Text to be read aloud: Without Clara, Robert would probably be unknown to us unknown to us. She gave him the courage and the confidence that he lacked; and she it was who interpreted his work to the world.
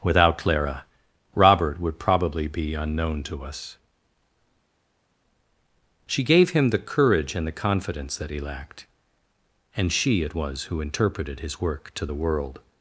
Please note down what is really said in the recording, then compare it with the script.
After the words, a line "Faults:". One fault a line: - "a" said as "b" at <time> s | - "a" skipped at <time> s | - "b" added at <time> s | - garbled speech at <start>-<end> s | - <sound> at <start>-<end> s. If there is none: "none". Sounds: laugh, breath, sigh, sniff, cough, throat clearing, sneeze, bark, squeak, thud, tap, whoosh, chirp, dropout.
Without Clara, Robert would probably be unknown to us. She gave him the courage and the confidence that he lacked; and she it was who interpreted his work to the world.
Faults:
- "unknown to us" skipped at 3.8 s